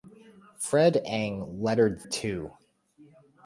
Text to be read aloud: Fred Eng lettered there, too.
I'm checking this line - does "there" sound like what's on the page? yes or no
no